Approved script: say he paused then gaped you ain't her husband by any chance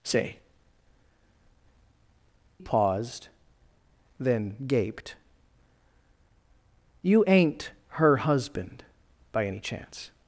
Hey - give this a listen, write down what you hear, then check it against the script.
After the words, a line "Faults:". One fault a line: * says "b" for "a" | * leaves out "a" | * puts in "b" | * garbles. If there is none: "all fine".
say paused then gaped you ain't her husband by any chance
Faults:
* leaves out "he"